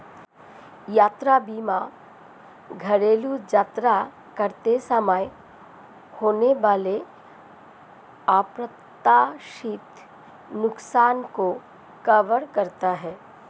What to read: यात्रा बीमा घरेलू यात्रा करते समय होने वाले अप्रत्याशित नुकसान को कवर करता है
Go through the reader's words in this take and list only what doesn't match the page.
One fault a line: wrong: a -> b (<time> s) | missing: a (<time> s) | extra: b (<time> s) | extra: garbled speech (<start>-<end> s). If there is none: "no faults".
no faults